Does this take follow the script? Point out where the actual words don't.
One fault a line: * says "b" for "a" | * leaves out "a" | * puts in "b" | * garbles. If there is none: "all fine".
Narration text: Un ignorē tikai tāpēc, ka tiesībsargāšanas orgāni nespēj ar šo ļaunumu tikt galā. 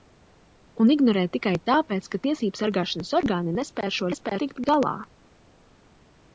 * says "nespēj" for "ļaunumu"